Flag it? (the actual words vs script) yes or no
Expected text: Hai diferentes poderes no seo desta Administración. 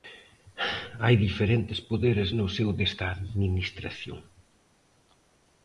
no